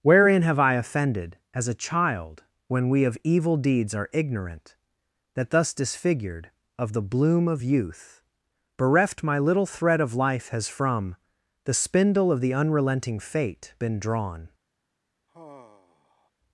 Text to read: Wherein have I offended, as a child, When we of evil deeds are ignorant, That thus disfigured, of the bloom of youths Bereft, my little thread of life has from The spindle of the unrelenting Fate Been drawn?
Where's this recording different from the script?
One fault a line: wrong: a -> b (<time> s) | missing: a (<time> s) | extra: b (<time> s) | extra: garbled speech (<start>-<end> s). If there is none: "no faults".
wrong: youths -> youth (7.6 s)